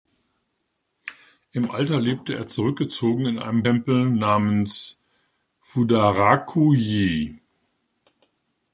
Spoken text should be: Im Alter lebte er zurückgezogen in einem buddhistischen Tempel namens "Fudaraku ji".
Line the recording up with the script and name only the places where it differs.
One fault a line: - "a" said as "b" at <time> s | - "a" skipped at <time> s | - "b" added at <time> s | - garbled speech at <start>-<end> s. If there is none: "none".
- "buddhistischen" skipped at 3.6 s